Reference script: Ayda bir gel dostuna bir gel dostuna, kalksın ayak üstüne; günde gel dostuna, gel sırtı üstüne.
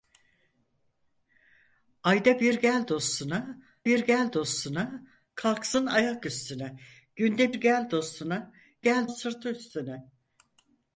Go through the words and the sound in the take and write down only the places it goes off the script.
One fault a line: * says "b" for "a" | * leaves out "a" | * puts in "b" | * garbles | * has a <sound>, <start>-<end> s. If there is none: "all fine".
all fine